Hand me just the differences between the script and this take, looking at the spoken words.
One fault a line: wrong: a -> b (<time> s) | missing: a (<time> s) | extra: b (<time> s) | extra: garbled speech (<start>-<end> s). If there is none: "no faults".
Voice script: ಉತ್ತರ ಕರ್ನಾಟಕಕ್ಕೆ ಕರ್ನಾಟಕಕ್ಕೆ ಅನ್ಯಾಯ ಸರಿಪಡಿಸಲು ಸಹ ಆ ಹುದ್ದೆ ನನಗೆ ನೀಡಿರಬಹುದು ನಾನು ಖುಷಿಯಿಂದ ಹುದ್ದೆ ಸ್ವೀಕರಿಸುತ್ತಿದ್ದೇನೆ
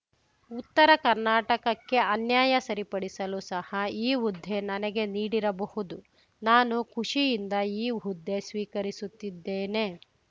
missing: ಕರ್ನಾಟಕಕ್ಕೆ (2.0 s)
wrong: ಆ -> ಈ (4.0 s)
extra: ಈ (7.8 s)